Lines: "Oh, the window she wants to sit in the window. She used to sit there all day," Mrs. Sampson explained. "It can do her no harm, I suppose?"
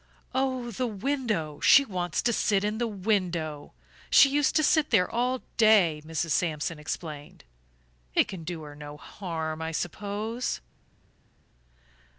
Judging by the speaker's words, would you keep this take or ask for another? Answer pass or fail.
pass